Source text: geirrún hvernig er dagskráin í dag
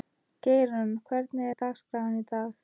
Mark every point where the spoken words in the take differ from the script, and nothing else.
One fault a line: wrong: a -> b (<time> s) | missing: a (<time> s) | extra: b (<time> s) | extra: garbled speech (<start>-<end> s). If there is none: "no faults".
no faults